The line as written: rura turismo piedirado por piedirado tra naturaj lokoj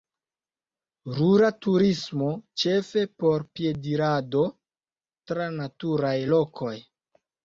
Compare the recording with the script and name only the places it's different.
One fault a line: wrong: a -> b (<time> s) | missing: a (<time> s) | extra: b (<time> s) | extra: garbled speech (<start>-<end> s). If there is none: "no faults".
wrong: piedirado -> ĉefe (2.6 s)